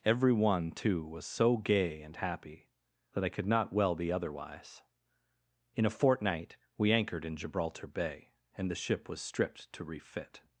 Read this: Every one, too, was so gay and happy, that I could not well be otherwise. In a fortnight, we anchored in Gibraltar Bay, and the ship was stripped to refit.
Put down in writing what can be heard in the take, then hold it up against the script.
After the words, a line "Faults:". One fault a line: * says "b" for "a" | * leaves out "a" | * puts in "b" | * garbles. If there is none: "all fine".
Every one, too, was so gay and happy, that I could not well be otherwise. In a fortnight, we anchored in Gibraltar Bay, and the ship was stripped to refit.
Faults:
all fine